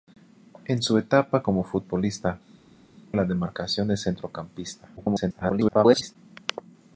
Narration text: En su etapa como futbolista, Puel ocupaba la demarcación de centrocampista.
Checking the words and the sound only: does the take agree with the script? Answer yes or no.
no